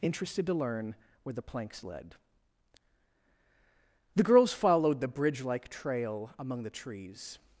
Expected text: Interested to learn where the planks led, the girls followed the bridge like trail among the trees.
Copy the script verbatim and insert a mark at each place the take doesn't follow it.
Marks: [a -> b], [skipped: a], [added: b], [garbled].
Interested to learn where the planks led, the girls followed the bridge like trail among the trees.